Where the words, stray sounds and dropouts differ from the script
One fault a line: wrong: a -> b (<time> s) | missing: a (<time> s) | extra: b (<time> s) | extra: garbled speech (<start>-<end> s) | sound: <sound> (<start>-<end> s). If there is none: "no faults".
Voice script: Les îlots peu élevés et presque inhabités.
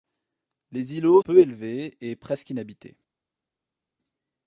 no faults